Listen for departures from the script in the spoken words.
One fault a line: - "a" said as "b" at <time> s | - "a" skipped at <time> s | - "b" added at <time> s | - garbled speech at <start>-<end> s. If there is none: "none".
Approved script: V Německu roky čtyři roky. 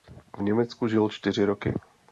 - "roky" said as "žil" at 0.9 s